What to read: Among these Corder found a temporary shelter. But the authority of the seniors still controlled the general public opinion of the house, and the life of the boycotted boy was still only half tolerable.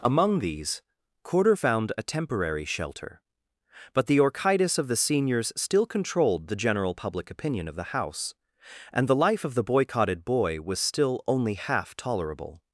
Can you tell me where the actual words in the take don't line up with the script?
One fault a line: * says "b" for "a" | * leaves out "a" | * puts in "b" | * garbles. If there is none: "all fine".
* says "orchitis" for "authority"